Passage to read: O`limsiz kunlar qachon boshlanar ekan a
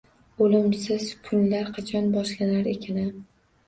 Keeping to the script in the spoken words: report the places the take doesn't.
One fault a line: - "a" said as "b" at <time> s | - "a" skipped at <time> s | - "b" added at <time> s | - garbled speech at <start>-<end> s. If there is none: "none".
none